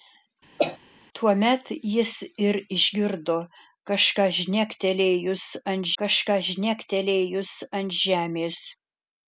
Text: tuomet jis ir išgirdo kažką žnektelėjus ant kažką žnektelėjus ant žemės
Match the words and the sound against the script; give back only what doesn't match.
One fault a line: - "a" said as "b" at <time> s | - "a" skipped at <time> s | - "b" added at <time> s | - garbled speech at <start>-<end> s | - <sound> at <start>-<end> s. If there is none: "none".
- cough at 0.6-0.8 s